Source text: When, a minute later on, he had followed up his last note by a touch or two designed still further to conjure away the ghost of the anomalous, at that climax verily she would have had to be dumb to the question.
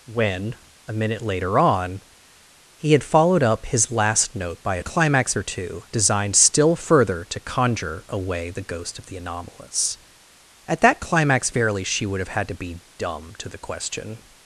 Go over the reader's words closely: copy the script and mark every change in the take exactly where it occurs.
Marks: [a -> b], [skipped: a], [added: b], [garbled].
When, a minute later on, he had followed up his last note by a [touch -> climax] or two designed still further to conjure away the ghost of the anomalous, at that climax verily she would have had to be dumb to the question.